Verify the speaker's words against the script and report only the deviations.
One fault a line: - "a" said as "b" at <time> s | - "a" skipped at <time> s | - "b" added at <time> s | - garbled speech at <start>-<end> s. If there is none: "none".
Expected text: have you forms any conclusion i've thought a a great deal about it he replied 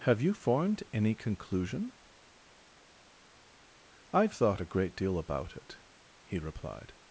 - "forms" said as "formed" at 0.3 s
- "a" skipped at 4.7 s